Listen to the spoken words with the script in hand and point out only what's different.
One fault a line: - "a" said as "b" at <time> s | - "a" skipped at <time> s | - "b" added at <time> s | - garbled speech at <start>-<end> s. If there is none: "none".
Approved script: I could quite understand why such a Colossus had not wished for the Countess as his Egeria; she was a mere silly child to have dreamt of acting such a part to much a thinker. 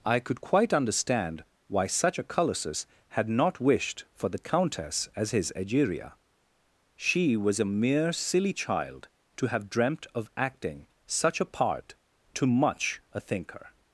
none